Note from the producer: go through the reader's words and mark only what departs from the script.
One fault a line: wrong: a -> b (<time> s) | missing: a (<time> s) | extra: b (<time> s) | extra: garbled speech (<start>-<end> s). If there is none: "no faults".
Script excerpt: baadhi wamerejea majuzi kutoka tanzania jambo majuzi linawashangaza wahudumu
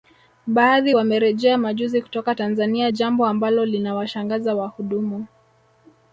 wrong: majuzi -> ambalo (3.3 s)